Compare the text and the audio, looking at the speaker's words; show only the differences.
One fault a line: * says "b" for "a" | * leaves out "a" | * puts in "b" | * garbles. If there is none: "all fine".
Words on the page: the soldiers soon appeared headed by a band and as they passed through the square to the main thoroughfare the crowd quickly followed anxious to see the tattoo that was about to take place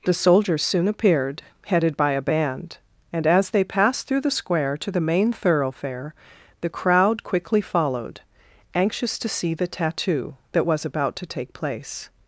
all fine